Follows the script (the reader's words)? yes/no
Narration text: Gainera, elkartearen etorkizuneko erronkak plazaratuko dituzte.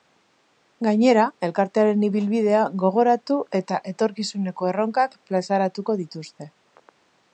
no